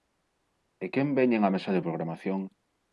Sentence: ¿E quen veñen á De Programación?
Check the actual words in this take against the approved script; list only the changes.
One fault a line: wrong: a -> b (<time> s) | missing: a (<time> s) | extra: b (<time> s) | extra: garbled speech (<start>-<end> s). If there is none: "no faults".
extra: Mesa (1.5 s)